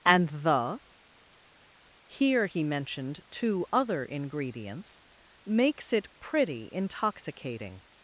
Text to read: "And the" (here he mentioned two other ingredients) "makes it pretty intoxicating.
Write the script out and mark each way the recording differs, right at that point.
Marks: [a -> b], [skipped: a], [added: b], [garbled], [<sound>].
"And the" (here he mentioned two other ingredients) "makes it pretty intoxicating.